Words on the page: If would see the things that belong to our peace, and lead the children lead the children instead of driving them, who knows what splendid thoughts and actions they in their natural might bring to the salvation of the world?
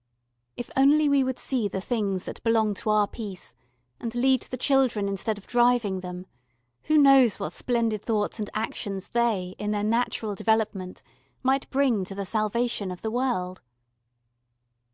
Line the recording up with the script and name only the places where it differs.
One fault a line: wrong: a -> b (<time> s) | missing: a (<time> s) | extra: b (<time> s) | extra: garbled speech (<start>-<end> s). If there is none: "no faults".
extra: only we (0.8 s)
missing: lead the children (5.1 s)
extra: development (10.4 s)